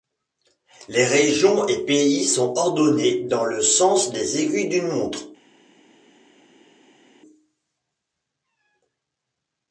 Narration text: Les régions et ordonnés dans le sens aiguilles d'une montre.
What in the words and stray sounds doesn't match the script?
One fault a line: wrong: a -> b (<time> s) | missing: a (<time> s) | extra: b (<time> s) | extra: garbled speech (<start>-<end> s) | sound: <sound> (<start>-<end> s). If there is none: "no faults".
extra: pays sont (1.9 s)
extra: des (4.1 s)